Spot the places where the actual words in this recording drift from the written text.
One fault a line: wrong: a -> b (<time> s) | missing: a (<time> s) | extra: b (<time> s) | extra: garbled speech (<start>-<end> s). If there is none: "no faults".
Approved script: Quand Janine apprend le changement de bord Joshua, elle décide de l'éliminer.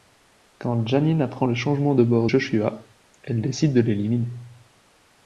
no faults